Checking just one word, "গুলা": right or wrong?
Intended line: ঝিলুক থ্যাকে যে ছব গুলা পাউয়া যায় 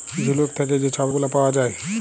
right